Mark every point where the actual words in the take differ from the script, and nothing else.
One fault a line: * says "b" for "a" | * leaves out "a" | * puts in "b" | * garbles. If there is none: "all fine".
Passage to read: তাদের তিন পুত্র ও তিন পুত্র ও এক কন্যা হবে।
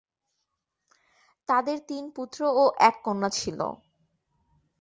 * leaves out "তিন পুত্র ও"
* says "ছিল" for "হবে"